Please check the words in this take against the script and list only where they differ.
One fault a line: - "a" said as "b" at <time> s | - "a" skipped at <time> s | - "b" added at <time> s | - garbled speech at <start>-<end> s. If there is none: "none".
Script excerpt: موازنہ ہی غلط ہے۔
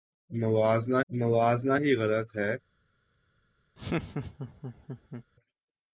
- "موازنہ" added at 1.1 s